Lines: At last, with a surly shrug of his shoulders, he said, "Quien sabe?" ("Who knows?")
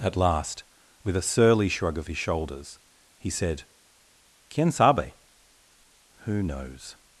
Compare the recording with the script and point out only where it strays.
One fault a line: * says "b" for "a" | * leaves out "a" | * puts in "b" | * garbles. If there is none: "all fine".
all fine